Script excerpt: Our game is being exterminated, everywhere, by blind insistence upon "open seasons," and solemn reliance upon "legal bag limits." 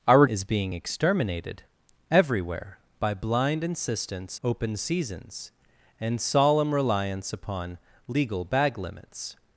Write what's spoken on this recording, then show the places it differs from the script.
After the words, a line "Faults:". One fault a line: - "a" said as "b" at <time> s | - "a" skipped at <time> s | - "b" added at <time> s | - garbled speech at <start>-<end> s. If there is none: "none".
Our is being exterminated, everywhere, by blind insistence "open seasons," and solemn reliance upon "legal bag limits."
Faults:
- "game" skipped at 0.2 s
- "upon" skipped at 4.4 s